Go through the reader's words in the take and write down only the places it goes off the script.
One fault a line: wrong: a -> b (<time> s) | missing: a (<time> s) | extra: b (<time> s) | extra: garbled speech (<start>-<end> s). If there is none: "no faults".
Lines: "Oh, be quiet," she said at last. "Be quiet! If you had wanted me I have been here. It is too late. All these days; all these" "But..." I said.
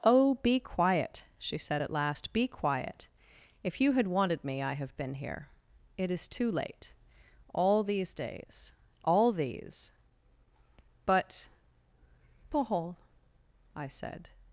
extra: paul (12.5 s)